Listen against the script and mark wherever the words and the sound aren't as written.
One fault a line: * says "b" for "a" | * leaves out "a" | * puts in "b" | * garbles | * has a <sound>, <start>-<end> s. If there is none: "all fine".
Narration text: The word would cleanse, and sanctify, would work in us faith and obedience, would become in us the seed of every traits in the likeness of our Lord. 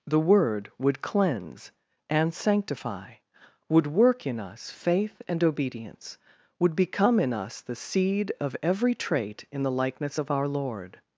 * says "trait" for "traits"